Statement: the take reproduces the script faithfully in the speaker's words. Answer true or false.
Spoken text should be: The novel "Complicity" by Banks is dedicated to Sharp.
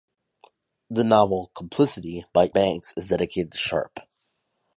true